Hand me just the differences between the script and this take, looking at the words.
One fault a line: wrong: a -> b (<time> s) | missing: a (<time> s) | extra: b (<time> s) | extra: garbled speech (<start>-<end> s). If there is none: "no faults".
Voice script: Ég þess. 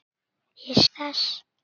no faults